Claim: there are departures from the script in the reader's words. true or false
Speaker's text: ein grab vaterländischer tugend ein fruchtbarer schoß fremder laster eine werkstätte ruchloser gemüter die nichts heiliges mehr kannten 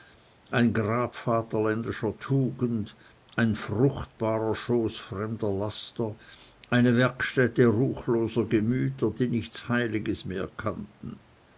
false